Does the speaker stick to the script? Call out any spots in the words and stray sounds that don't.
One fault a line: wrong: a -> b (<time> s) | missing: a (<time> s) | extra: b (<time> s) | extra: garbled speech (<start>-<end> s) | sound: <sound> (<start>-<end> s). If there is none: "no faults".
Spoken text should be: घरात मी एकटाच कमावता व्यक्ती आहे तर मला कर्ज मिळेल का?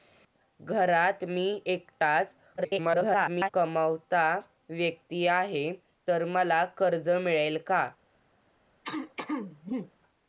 extra: garbled speech (2.6-3.5 s)
sound: throat clearing (8.8-9.9 s)